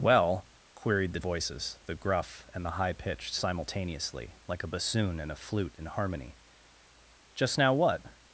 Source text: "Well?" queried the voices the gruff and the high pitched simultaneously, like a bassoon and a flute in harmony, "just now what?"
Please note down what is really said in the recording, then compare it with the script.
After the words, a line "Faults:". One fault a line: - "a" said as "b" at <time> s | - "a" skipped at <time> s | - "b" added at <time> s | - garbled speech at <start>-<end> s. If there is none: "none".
"Well?" queried the voices the gruff and the high pitched simultaneously, like a bassoon and a flute in harmony, "just now what?"
Faults:
none